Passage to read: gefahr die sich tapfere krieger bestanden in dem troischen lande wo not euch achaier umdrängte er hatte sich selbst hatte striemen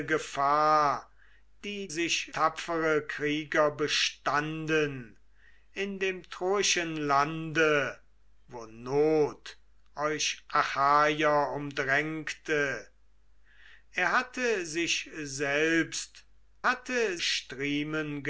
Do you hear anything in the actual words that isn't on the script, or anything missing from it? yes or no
no